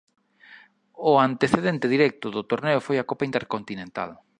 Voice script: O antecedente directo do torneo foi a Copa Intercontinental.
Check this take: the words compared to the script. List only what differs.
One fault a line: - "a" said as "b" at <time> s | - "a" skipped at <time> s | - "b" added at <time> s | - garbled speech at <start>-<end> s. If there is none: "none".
none